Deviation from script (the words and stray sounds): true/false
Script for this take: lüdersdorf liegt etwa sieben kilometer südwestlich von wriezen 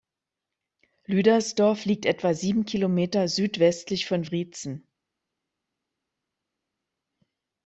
false